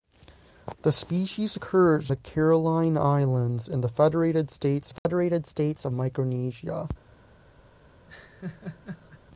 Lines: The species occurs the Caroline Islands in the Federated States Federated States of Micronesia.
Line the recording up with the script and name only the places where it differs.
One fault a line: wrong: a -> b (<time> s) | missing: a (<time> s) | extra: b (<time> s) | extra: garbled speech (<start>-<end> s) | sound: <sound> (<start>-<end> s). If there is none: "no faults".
sound: dropout (5.0-5.1 s)
sound: laugh (8.1-9.2 s)